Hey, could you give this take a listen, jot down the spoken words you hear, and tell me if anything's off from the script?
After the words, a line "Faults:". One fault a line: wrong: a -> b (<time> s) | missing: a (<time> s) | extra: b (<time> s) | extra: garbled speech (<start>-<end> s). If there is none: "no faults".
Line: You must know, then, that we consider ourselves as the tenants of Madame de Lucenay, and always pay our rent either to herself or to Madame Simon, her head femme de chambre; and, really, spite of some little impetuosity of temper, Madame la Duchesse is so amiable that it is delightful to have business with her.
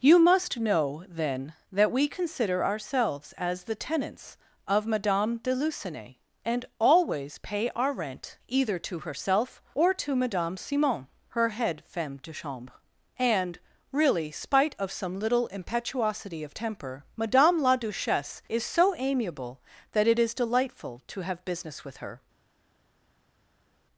You must know, then, that we consider ourselves as the tenants of Madame de Lucenay, and always pay our rent either to herself or to Madame Simon, her head femme de chambre; and, really, spite of some little impetuosity of temper, Madame la Duchesse is so amiable that it is delightful to have business with her.
Faults:
no faults